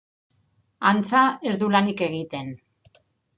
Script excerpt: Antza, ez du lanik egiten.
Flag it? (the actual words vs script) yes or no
no